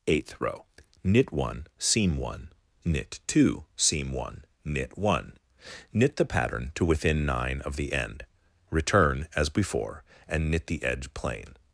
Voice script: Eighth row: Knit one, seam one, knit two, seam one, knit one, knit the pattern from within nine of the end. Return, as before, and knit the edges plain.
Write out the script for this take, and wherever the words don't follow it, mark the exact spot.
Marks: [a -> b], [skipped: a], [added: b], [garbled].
Eighth row: Knit one, seam one, knit two, seam one, knit one, knit the pattern [from -> to] within nine of the end. Return, as before, and knit the [edges -> edge] plain.